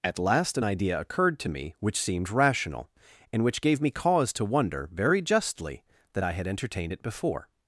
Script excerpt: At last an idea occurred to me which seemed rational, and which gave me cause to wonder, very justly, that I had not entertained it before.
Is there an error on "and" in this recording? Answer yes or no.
no